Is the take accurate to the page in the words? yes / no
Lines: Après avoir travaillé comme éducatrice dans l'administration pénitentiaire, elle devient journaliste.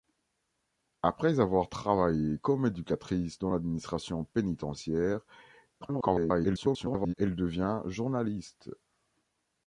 no